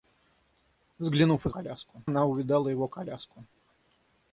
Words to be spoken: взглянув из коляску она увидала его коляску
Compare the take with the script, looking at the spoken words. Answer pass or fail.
pass